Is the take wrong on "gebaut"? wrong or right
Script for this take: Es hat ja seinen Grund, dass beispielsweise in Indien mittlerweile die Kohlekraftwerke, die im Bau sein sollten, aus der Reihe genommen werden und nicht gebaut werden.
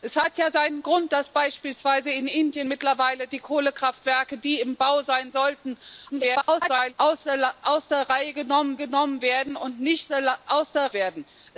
wrong